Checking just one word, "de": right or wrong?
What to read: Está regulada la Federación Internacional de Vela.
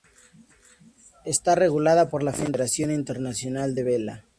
right